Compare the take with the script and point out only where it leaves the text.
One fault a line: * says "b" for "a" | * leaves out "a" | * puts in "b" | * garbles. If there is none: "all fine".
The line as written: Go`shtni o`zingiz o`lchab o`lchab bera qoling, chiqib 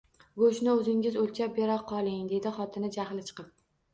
* leaves out "o`lchab"
* puts in "dedi xotini jahli"